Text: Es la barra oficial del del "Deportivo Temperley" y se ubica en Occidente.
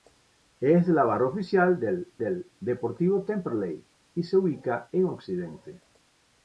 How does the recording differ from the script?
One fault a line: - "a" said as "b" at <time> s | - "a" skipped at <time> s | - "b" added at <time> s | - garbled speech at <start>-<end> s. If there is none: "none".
none